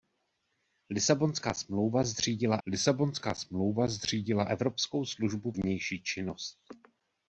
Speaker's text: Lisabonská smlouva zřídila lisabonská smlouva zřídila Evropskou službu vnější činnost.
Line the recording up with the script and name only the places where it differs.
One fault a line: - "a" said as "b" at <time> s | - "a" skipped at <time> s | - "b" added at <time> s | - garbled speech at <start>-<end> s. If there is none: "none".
none